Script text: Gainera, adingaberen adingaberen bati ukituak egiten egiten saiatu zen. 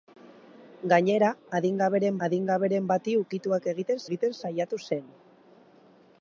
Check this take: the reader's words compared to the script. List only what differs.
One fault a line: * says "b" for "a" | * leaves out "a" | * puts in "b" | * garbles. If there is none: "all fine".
all fine